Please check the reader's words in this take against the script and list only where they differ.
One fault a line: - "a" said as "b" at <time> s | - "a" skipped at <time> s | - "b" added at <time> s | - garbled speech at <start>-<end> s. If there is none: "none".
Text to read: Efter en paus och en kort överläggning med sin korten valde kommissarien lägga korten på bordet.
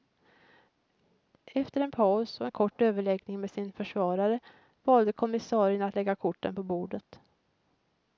- "korten" said as "försvarare" at 3.7 s
- "att" added at 5.8 s